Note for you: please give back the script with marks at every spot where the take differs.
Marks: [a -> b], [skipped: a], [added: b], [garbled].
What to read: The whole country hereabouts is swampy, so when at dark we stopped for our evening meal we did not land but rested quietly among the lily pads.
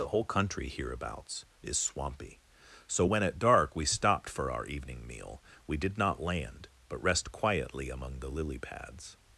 The whole country hereabouts is swampy, so when at dark we stopped for our evening meal we did not land but [rested -> rest] quietly among the lily pads.